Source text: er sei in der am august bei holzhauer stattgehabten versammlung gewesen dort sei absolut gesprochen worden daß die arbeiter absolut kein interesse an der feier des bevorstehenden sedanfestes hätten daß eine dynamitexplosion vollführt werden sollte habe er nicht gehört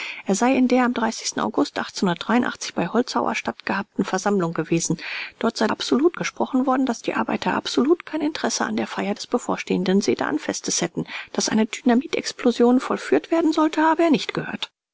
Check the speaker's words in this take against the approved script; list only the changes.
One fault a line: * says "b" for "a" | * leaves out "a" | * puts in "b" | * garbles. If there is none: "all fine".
all fine